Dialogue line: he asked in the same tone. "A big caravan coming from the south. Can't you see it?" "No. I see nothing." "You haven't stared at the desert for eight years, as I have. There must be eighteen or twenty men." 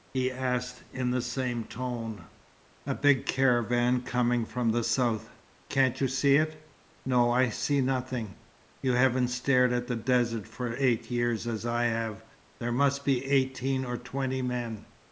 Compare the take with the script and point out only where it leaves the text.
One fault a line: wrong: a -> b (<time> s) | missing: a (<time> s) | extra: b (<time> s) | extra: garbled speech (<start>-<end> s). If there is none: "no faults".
no faults